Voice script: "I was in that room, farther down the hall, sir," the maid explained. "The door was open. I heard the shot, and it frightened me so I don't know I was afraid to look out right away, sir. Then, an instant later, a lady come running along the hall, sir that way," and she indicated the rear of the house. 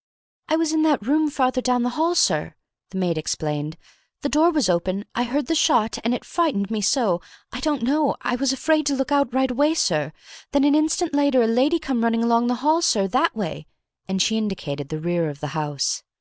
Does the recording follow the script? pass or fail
pass